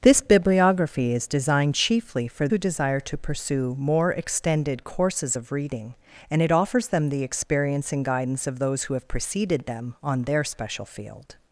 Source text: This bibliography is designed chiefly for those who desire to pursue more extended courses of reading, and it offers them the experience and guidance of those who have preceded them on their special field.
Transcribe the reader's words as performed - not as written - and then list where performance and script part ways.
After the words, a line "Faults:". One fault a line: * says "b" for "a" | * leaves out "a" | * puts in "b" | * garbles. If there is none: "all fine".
This bibliography is designed chiefly for who desire to pursue more extended courses of reading, and it offers them the experience and guidance of those who have preceded them on their special field.
Faults:
* leaves out "those"